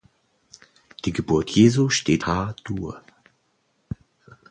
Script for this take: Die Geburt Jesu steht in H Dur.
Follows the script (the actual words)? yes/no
no